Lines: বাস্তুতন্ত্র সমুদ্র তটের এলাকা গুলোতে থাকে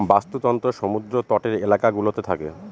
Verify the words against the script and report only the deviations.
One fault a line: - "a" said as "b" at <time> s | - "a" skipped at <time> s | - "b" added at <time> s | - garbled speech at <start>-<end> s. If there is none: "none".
none